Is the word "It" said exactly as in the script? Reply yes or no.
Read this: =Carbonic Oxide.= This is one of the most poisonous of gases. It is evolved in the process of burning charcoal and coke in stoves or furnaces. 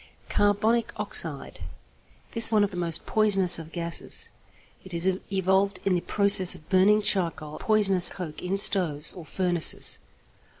yes